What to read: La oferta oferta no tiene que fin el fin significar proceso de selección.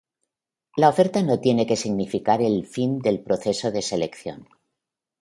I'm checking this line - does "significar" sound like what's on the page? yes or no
no